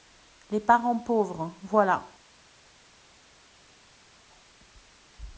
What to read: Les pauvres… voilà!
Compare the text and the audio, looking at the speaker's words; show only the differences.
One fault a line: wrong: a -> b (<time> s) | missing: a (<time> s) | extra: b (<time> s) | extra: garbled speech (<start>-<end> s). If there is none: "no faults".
extra: parents (0.6 s)